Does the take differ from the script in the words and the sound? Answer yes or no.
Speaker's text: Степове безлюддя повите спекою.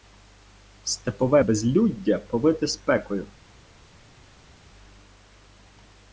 no